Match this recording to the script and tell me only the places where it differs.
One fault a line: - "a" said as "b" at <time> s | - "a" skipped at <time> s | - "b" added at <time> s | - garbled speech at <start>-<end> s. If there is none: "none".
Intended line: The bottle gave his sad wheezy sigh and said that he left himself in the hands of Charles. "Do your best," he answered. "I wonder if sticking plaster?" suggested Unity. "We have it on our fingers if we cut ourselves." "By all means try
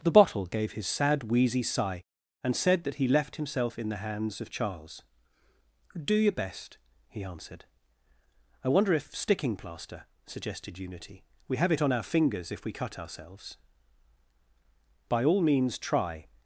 none